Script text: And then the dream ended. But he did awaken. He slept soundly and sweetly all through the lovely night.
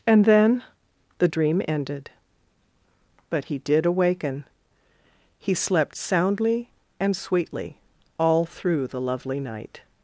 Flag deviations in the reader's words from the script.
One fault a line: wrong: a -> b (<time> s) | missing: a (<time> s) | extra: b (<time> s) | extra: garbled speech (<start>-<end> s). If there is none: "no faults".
no faults